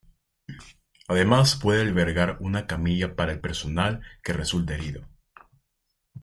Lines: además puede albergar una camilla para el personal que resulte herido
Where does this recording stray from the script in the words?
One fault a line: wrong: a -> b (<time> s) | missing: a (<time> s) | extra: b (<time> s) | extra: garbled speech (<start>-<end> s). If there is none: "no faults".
no faults